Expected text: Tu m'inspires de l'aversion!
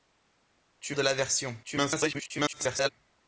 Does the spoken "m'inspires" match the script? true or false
false